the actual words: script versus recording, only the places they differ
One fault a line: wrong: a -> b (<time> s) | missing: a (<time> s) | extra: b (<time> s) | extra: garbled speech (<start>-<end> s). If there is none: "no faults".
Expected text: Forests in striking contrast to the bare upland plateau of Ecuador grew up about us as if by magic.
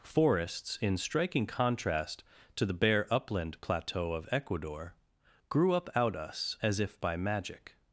wrong: about -> out (5.9 s)